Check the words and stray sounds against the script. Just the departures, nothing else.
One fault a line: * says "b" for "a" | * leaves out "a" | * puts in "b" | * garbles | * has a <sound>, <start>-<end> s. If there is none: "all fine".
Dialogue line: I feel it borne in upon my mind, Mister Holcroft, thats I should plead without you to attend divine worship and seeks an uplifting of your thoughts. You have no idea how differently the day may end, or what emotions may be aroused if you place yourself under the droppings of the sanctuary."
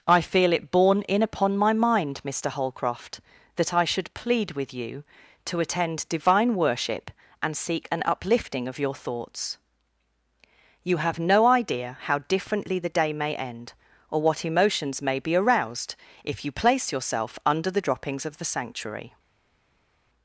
* says "that" for "thats"
* says "with" for "without"
* says "seek" for "seeks"